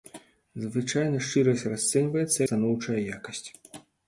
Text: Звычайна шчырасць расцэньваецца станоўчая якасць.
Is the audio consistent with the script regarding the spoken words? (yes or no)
yes